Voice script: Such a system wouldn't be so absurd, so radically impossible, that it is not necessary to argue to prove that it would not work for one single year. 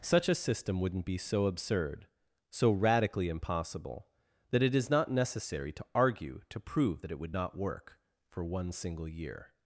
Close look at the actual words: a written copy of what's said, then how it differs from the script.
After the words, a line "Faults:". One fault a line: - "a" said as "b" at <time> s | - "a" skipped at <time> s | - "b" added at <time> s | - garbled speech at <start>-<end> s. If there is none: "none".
Such a system wouldn't be so absurd, so radically impossible, that it is not necessary to argue to prove that it would not work for one single year.
Faults:
none